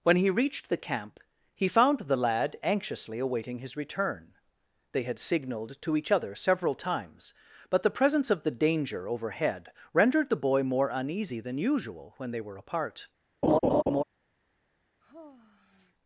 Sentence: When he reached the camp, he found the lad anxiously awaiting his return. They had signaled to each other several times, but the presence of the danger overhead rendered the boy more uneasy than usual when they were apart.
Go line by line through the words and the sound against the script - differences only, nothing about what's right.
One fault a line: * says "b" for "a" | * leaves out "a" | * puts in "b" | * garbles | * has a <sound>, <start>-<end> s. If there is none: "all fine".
* has a laugh, 13.4-14.0 s
* has a sigh, 15.0-15.9 s